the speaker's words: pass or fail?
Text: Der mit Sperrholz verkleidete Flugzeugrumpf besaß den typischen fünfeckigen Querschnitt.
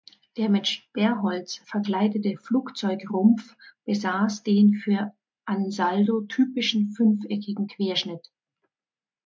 fail